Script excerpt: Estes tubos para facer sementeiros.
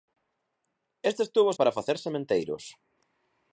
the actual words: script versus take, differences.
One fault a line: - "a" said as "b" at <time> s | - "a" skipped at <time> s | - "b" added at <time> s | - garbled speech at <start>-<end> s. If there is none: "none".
none